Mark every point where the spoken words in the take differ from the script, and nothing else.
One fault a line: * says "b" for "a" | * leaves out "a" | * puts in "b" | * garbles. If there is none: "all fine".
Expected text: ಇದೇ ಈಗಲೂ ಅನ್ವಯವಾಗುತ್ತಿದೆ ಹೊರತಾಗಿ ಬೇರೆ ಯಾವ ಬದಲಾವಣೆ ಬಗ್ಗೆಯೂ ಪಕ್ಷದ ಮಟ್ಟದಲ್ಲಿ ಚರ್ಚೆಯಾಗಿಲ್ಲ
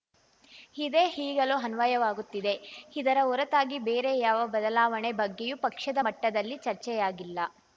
* puts in "ಇದರ"